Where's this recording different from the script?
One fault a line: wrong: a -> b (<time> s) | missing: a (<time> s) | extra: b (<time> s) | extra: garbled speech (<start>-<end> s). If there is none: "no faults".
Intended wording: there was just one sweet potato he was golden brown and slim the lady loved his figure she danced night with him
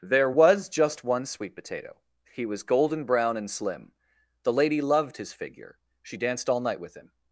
extra: all (6.5 s)